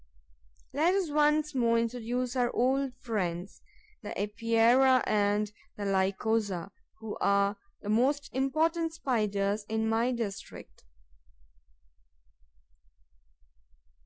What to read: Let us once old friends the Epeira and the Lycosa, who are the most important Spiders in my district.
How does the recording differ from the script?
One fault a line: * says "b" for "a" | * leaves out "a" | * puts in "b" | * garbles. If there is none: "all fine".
* puts in "more introduce our"